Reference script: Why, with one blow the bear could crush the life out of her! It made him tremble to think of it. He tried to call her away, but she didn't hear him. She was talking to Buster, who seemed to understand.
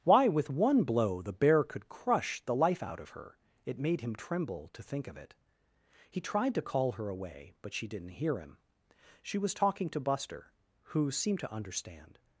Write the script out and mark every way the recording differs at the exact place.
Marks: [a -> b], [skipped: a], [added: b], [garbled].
Why, with one blow the bear could crush the life out of her! It made him tremble to think of it. He tried to call her away, but she didn't hear him. She was talking to Buster, who seemed to understand.